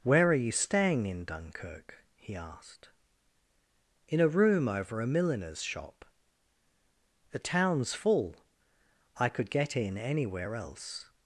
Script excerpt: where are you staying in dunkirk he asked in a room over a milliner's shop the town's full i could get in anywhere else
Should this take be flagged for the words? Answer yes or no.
no